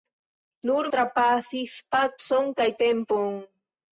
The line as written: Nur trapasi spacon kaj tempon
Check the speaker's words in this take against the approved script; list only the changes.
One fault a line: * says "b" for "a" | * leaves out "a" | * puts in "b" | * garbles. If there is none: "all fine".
all fine